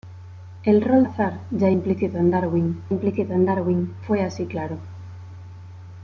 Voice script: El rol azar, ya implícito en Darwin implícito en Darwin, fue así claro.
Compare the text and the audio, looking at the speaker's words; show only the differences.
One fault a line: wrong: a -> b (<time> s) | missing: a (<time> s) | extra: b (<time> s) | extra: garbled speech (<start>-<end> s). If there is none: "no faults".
no faults